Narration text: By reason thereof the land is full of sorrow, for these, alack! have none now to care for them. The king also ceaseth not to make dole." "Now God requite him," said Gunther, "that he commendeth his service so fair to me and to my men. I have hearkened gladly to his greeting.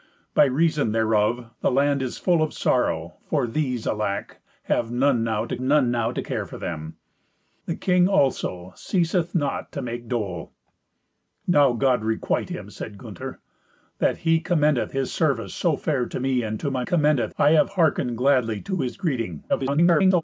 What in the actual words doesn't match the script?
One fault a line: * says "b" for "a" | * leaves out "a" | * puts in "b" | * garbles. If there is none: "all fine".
* puts in "none now to"
* says "commendeth" for "men"
* garbles